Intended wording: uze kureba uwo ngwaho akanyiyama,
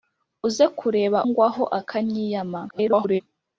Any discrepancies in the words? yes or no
yes